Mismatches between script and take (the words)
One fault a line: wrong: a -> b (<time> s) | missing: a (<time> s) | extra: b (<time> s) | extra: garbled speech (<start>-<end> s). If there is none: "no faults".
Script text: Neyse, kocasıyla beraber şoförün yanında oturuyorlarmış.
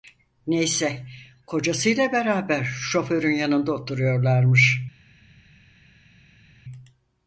no faults